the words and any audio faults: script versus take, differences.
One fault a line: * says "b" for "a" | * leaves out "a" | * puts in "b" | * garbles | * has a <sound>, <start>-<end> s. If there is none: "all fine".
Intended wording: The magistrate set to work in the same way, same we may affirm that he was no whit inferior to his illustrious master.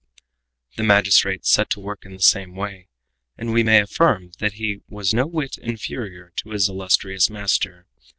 * says "and" for "same"